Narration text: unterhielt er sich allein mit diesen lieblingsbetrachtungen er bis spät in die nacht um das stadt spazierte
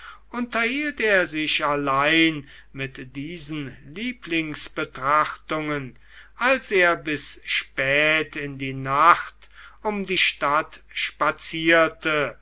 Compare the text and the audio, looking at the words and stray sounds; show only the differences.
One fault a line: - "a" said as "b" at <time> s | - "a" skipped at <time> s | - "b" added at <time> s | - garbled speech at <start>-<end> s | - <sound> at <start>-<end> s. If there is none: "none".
- "als" added at 6.4 s
- "das" said as "die" at 10.0 s